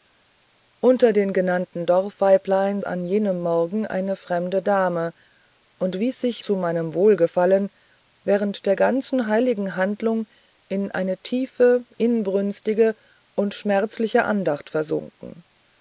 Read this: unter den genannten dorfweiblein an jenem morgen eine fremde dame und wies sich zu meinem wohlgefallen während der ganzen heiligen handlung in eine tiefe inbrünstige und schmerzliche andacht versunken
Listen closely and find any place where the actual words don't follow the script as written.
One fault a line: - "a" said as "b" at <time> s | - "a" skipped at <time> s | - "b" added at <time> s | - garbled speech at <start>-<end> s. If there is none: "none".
none